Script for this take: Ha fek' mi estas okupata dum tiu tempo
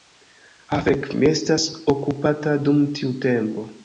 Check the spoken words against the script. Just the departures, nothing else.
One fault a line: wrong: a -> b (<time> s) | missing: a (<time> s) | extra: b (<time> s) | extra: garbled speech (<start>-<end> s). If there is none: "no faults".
no faults